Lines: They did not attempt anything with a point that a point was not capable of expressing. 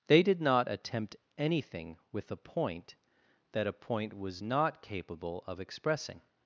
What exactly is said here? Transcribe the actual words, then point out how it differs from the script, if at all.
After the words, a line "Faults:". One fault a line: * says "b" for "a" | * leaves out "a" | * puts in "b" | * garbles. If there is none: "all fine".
They did not attempt anything with a point that a point was not capable of expressing.
Faults:
all fine